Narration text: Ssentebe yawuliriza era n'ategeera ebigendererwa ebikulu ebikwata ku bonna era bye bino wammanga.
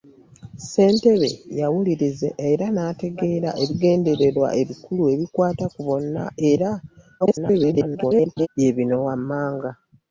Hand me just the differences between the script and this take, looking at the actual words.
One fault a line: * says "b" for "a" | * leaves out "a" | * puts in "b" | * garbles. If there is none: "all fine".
* garbles